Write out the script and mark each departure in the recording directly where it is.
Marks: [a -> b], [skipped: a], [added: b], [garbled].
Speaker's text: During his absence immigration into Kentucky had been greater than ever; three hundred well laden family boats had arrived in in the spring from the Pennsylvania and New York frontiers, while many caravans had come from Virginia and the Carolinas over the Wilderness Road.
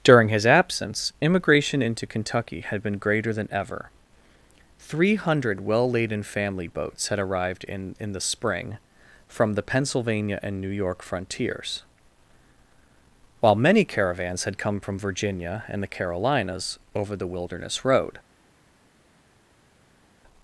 During his absence immigration into Kentucky had been greater than ever; three hundred well laden family boats had arrived in in the spring from the Pennsylvania and New York frontiers, while many caravans had come from Virginia and the Carolinas over the Wilderness Road.